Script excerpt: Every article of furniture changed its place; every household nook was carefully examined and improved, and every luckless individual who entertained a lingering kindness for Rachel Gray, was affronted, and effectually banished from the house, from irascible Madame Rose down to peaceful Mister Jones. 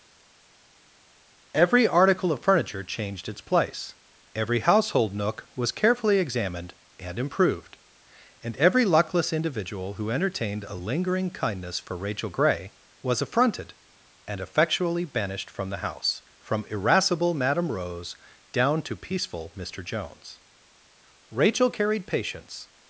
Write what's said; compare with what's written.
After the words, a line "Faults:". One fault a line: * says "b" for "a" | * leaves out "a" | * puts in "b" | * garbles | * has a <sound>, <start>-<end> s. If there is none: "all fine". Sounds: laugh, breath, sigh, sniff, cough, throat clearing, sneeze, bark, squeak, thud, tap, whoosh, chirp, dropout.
Every article of furniture changed its place; every household nook was carefully examined and improved, and every luckless individual who entertained a lingering kindness for Rachel Gray, was affronted, and effectually banished from the house, from irascible Madame Rose down to peaceful Mister Jones. Rachel carried patience
Faults:
* puts in "Rachel carried patience"